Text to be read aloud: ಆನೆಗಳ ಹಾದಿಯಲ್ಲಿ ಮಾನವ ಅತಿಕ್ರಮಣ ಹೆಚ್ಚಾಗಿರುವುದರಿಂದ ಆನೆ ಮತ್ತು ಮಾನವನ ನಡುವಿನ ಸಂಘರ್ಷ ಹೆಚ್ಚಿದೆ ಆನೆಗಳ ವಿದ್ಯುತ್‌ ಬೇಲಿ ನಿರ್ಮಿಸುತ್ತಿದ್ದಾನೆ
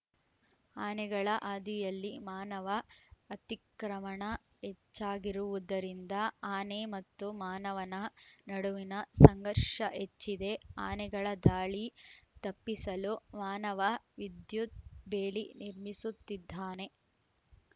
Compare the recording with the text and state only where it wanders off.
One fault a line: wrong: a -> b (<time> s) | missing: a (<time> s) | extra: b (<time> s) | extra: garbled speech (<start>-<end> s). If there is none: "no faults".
extra: ದಾಳಿ ತಪ್ಪಿಸಲು ಮಾನವ (11.5 s)